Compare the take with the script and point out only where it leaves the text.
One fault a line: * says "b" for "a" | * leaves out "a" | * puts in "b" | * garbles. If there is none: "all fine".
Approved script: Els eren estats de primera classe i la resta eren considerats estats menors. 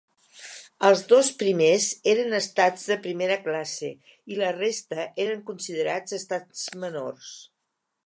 * puts in "dos primers"